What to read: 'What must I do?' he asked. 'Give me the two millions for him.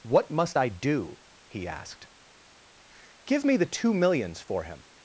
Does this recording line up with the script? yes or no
yes